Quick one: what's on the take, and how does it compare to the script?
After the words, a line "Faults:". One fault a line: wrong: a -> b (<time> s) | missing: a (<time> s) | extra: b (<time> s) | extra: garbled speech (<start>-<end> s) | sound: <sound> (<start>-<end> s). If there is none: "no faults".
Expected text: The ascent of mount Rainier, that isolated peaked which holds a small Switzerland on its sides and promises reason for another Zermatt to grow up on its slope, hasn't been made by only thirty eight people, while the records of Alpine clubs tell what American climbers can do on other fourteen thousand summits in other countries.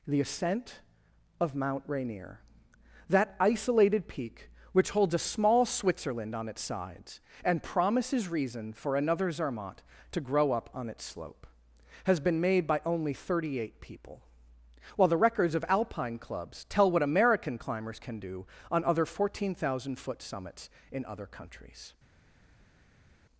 The ascent of mount Rainier, that isolated peak which holds a small Switzerland on its sides and promises reason for another Zermatt to grow up on its slope, has been made by only thirty eight people, while the records of Alpine clubs tell what American climbers can do on other fourteen thousand foot summits in other countries.
Faults:
wrong: peaked -> peak (4.1 s)
wrong: hasn't -> has (12.1 s)
extra: foot (20.0 s)